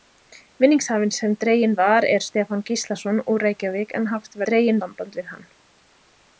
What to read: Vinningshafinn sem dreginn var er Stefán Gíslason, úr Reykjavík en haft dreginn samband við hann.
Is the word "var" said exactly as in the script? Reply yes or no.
yes